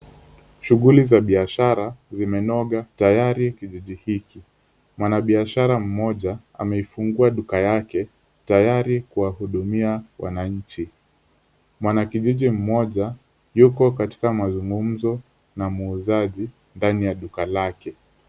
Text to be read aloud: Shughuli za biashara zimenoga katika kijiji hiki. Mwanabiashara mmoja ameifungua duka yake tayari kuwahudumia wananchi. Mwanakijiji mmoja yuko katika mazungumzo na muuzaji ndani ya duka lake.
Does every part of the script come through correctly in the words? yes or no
no